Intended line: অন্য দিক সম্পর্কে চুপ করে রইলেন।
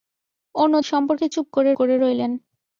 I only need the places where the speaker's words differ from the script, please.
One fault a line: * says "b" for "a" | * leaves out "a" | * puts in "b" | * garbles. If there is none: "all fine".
* leaves out "দিক"
* puts in "করে"